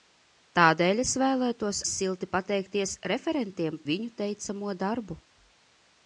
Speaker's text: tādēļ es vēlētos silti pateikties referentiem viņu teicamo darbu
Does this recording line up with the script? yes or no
yes